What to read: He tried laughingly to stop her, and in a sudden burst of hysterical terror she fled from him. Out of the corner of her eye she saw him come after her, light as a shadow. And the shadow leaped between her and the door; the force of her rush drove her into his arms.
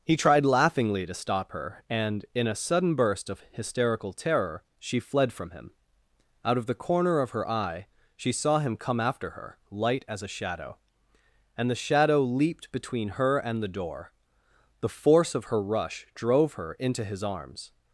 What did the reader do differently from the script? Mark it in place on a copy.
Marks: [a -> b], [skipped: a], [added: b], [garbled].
He tried laughingly to stop her, and in a sudden burst of hysterical terror she fled from him. Out of the corner of her eye she saw him come after her, light as a shadow. And the shadow leaped between her and the door; the force of her rush drove her into his arms.